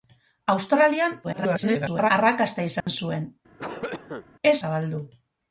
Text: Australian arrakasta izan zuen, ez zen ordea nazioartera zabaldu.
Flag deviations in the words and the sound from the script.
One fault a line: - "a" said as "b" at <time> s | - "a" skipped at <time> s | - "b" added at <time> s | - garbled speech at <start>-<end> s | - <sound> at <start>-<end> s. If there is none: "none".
- garbled speech at 1.2-2.1 s
- dropout at 2.8-2.9 s
- cough at 3.6-4.2 s
- "zen ordea nazioartera" skipped at 4.6 s